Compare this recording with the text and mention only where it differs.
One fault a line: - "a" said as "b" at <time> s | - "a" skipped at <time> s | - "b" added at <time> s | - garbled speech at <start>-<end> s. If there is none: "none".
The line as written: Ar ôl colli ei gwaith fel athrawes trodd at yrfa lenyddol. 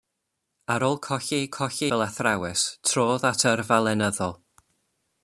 - "gwaith" said as "colli" at 1.6 s